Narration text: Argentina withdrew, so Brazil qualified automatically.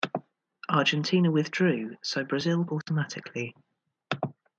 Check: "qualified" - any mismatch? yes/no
yes